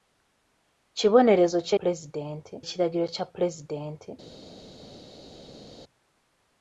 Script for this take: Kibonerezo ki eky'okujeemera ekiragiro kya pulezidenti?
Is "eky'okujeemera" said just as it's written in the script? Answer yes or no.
no